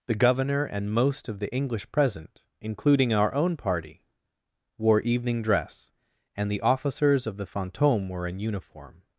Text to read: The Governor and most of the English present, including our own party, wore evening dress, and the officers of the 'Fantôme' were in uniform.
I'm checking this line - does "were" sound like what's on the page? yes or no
yes